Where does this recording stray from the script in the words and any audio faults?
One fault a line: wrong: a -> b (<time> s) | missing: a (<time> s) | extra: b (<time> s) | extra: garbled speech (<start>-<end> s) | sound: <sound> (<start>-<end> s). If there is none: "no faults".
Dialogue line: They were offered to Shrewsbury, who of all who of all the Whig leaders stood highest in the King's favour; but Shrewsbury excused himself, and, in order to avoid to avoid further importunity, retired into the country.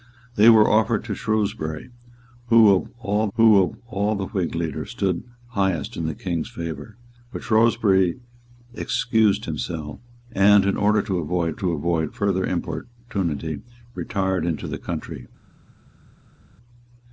no faults